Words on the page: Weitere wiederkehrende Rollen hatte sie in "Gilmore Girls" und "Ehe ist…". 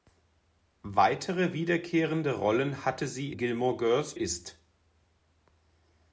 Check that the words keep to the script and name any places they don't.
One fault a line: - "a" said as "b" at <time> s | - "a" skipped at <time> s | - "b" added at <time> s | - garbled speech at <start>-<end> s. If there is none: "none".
- "in" skipped at 3.4 s
- "und Ehe" skipped at 4.1 s